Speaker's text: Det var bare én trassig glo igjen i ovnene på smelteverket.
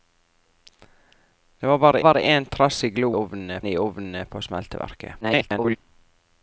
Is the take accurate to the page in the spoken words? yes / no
no